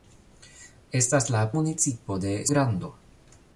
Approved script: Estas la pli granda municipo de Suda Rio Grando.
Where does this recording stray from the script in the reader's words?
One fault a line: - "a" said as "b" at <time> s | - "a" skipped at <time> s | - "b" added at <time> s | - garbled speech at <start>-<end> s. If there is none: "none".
- "pli granda" skipped at 1.4 s
- "Suda Rio" skipped at 2.3 s